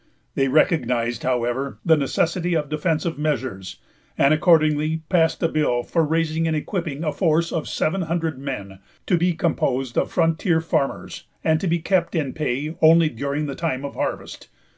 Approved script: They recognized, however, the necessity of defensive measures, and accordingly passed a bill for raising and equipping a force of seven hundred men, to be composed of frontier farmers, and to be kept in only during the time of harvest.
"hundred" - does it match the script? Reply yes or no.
yes